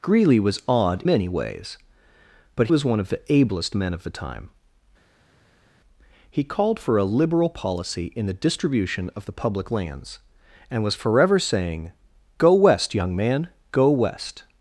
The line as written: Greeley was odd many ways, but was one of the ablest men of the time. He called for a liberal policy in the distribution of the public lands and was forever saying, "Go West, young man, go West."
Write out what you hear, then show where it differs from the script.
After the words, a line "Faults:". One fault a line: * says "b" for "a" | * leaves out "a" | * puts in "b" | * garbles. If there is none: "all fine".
Greeley was odd many ways, but was one of the ablest men of the time. He called for a liberal policy in the distribution of the public lands and was forever saying, "Go West, young man, go West."
Faults:
all fine